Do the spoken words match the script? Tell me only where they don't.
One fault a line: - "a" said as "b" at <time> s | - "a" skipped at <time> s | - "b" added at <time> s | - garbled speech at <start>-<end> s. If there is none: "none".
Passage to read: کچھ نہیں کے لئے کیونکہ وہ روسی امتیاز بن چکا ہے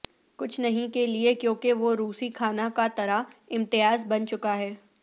- "کھانا کا طرہ" added at 2.3 s